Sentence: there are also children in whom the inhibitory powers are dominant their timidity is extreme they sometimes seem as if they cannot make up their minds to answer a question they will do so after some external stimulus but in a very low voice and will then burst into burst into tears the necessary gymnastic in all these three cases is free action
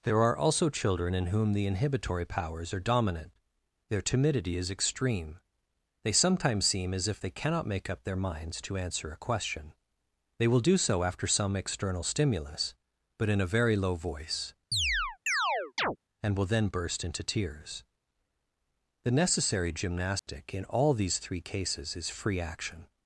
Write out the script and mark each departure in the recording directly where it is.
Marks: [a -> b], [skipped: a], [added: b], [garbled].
there are also children in whom the inhibitory powers are dominant their timidity is extreme they sometimes seem as if they cannot make up their minds to answer a question they will do so after some external stimulus but in a very low voice and will then burst into [skipped: burst into] tears the necessary gymnastic in all these three cases is free action